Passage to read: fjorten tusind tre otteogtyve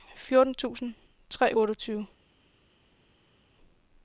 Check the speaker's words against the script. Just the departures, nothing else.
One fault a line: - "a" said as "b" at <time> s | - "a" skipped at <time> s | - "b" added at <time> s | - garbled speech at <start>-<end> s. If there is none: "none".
none